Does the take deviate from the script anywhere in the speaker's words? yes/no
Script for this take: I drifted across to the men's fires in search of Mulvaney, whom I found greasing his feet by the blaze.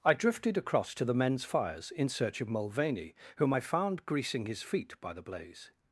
no